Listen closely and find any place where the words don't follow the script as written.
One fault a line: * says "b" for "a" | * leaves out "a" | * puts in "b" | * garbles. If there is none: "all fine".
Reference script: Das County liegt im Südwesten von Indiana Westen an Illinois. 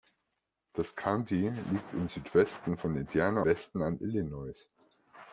all fine